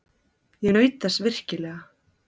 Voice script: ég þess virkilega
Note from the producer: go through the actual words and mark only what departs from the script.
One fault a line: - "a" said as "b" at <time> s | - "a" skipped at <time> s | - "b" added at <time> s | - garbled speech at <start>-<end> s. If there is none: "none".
- "naut" added at 0.7 s